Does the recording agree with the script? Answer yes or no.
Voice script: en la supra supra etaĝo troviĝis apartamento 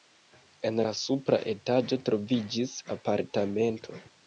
no